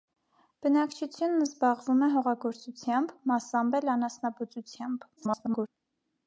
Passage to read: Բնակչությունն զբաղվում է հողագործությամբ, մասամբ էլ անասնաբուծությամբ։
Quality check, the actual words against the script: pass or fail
fail